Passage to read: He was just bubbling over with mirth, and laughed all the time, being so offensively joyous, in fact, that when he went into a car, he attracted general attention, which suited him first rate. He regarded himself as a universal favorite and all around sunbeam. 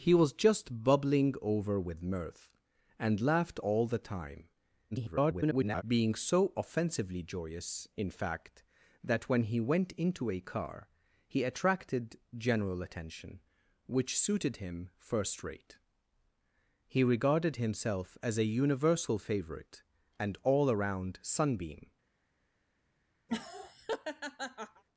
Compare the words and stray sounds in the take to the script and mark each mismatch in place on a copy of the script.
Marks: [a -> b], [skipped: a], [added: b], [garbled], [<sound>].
He was just bubbling over with mirth, and laughed all the time, [garbled] being so offensively joyous, in fact, that when he went into a car, he attracted general attention, which suited him first rate. He regarded himself as a universal favorite and all around sunbeam. [laugh]